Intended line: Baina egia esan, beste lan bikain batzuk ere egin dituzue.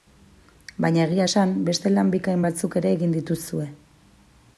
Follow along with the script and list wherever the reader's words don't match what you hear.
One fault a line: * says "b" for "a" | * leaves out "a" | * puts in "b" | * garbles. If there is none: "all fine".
all fine